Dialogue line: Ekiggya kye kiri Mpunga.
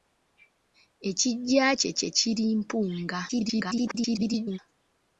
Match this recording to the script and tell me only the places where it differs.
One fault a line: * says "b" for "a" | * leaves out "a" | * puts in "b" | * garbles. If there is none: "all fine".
* puts in "kye"
* garbles